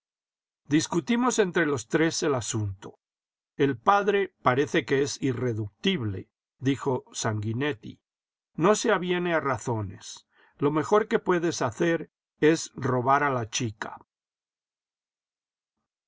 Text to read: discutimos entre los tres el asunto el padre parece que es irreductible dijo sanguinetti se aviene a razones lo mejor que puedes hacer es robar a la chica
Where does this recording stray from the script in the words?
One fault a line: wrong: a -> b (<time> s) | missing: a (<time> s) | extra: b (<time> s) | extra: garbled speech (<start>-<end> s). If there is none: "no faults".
extra: no (8.5 s)